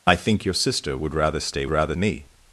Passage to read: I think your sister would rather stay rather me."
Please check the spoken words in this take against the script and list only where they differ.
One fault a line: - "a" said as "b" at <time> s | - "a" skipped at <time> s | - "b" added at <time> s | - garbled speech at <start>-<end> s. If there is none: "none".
none